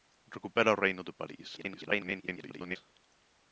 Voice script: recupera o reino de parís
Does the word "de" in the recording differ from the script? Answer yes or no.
no